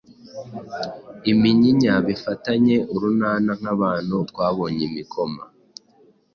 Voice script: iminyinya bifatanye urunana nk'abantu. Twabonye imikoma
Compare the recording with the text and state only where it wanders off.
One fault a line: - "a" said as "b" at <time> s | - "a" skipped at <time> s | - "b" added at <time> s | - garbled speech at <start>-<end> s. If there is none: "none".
none